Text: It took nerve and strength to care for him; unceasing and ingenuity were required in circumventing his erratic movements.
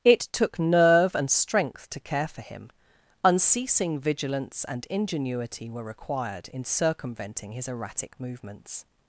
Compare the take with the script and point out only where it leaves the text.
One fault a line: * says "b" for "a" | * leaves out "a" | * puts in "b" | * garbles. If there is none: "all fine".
* puts in "vigilance"